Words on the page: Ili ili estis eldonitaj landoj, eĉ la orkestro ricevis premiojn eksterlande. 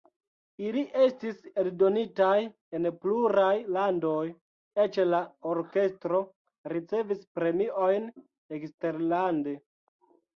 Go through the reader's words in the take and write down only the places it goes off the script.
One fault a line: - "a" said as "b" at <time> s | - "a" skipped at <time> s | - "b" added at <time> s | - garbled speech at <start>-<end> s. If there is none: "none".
- "ili" skipped at 0.8 s
- "en pluraj" added at 2.8 s